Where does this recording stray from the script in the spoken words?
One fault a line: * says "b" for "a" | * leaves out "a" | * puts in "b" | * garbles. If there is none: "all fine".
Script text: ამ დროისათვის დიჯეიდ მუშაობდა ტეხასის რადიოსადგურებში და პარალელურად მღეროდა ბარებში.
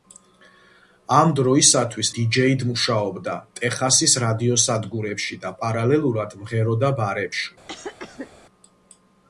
all fine